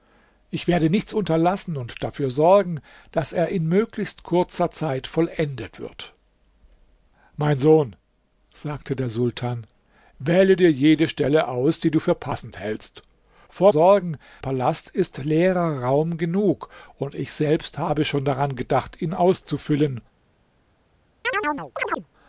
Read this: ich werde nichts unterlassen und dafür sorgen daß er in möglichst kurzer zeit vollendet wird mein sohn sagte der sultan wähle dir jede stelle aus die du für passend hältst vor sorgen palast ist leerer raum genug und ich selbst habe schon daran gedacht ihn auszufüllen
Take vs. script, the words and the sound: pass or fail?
fail